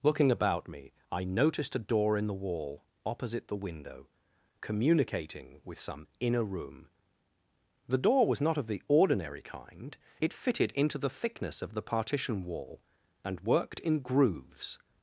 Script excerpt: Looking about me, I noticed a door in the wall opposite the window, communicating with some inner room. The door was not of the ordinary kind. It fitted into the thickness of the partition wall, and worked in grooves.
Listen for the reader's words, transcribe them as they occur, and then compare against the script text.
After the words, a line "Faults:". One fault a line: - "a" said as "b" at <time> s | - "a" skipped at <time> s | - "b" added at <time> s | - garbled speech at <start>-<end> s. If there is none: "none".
Looking about me, I noticed a door in the wall opposite the window, communicating with some inner room. The door was not of the ordinary kind. It fitted into the thickness of the partition wall, and worked in grooves.
Faults:
none